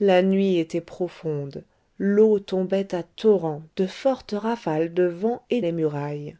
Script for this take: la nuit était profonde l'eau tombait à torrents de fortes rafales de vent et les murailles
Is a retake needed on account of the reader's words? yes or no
no